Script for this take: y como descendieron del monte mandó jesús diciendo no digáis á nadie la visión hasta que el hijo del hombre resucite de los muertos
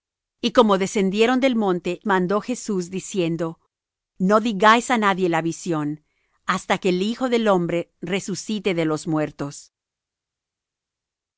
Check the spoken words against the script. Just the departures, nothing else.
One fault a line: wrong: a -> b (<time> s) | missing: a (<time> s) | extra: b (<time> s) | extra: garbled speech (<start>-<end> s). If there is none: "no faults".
no faults